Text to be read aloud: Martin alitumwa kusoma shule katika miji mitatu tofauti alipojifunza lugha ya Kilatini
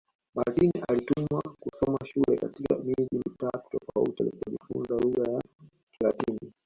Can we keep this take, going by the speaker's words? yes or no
yes